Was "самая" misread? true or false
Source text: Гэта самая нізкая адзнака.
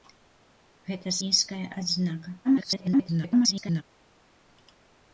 true